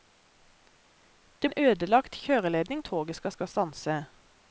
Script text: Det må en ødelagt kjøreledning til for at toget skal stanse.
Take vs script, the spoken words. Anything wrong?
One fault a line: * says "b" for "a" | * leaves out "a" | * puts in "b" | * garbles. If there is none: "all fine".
* leaves out "må"
* leaves out "til for"
* puts in "skal"